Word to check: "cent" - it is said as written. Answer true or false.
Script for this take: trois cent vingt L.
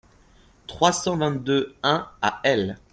true